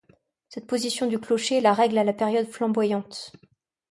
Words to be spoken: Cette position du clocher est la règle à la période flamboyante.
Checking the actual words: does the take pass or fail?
pass